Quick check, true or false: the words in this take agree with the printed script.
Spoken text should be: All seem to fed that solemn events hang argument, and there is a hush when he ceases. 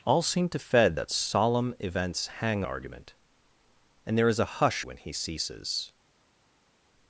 true